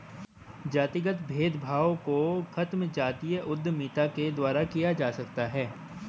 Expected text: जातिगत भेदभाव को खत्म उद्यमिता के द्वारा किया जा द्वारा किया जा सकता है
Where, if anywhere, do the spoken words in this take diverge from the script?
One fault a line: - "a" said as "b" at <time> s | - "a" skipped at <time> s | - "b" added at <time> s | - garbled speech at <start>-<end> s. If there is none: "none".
- "जातीय" added at 2.9 s
- "द्वारा किया जा" skipped at 5.1 s